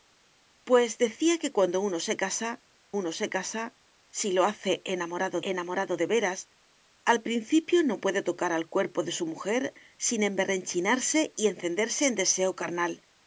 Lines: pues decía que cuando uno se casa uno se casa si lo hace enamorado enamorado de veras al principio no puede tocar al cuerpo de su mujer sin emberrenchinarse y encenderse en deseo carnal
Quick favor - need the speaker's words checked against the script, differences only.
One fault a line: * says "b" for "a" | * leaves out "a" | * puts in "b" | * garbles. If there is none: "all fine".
all fine